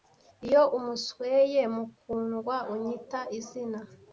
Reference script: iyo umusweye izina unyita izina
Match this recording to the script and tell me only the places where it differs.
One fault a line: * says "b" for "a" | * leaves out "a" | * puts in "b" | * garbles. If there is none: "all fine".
* says "mukundwa" for "izina"